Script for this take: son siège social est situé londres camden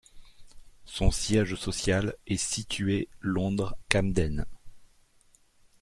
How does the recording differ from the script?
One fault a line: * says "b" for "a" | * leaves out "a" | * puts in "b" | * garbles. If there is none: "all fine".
all fine